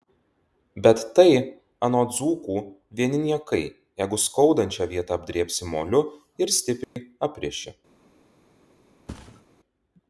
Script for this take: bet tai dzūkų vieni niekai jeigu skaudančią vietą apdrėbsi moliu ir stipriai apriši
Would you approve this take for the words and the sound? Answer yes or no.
no